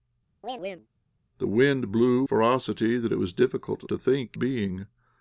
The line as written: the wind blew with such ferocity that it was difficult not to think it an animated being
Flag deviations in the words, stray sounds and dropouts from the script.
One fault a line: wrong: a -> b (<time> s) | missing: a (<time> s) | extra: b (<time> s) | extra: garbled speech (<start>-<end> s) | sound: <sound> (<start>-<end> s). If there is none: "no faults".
sound: chirp (0.4-0.9 s)
missing: with such (2.2 s)
missing: not (3.8 s)
missing: it an animated (4.4 s)